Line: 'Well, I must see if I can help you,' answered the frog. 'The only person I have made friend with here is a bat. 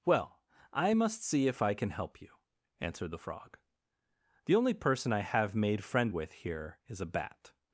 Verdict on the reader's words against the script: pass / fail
pass